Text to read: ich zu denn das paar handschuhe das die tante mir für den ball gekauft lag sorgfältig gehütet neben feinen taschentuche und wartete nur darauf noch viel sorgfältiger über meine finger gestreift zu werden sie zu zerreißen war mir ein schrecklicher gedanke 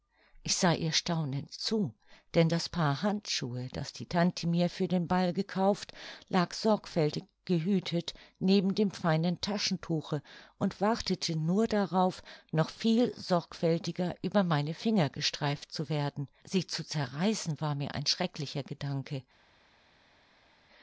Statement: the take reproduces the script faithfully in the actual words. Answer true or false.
false